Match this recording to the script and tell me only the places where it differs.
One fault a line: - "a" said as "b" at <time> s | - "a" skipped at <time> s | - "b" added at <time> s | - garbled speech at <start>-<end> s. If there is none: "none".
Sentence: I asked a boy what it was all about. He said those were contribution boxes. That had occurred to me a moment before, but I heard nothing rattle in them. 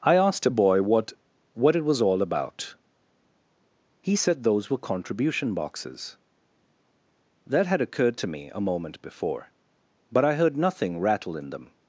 - "what" added at 1.5 s